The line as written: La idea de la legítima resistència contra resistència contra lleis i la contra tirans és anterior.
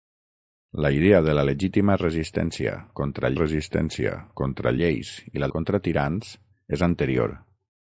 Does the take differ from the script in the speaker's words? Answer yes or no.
no